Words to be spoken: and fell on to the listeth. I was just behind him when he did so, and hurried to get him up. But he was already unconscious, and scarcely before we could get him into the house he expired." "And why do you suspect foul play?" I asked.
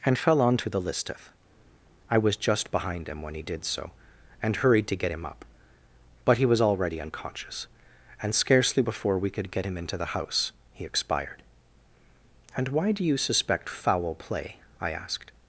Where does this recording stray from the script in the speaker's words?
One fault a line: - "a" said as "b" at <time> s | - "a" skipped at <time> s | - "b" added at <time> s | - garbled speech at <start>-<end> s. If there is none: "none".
none